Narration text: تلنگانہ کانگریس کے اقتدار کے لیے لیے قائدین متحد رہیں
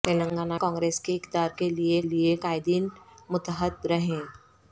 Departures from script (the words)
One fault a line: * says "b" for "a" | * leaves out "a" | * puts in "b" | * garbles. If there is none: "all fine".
all fine